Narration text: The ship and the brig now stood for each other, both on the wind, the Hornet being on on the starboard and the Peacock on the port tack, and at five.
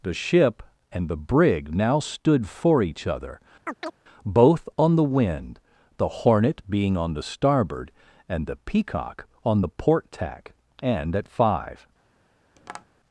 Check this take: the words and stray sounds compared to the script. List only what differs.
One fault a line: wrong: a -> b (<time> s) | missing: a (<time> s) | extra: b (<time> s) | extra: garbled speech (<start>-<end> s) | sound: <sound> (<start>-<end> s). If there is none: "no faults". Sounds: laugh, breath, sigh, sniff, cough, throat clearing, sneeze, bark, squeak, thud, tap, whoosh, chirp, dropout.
sound: chirp (3.6-3.9 s)
missing: on (7.1 s)
sound: tap (12.6-12.9 s)